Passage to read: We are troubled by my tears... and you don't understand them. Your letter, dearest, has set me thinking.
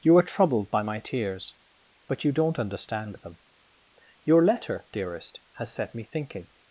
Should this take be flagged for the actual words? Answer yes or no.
yes